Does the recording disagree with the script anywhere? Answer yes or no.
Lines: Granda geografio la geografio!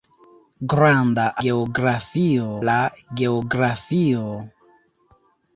no